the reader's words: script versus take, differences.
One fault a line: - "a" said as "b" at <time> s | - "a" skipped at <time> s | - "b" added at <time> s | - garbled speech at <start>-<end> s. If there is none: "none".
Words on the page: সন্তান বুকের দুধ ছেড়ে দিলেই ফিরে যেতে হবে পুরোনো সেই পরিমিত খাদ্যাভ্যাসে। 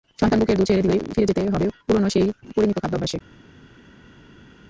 none